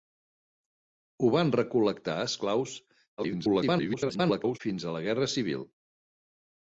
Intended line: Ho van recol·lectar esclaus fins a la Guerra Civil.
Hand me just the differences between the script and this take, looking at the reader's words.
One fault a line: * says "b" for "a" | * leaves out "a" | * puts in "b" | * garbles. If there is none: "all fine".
* garbles